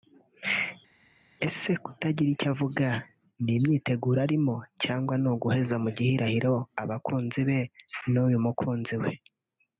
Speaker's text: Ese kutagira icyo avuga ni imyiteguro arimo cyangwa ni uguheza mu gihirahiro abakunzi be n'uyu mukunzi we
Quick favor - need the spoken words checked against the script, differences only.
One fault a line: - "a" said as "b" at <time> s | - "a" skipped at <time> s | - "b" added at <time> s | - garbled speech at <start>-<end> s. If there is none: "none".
none